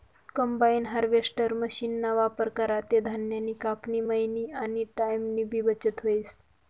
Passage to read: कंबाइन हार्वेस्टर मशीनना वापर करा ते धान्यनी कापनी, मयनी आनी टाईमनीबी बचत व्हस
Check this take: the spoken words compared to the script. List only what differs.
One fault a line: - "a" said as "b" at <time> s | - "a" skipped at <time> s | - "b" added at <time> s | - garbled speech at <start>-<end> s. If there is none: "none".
none